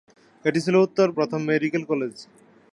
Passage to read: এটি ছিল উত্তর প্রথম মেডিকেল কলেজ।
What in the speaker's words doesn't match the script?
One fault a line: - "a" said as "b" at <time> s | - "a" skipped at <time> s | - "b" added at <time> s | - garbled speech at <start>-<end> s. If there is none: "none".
none